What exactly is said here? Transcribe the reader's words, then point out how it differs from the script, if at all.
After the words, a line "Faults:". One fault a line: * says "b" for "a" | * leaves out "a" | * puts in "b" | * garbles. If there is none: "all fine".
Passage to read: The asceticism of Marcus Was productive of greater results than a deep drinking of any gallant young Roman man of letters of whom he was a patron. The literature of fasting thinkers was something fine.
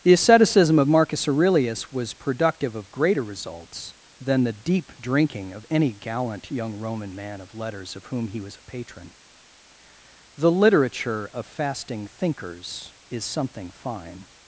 The asceticism of Marcus Aurelius was productive of greater results than the deep drinking of any gallant young Roman man of letters of whom he was a patron. The literature of fasting thinkers is something fine.
Faults:
* puts in "Aurelius"
* says "the" for "a"
* says "is" for "was"